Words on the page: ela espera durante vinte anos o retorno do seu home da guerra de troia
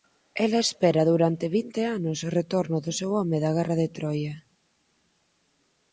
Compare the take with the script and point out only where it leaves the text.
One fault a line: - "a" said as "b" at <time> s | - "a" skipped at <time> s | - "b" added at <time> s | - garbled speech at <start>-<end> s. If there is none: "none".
none